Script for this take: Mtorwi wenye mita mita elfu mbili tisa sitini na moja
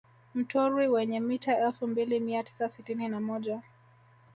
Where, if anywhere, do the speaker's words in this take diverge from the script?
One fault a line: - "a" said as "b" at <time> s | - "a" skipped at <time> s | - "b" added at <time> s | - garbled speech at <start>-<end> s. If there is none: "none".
- "mita" skipped at 1.6 s
- "mia" added at 2.2 s